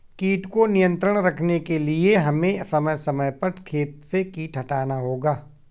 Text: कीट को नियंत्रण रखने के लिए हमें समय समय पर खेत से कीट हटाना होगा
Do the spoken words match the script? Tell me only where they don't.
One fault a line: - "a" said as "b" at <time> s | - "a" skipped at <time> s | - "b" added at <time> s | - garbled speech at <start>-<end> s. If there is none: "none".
none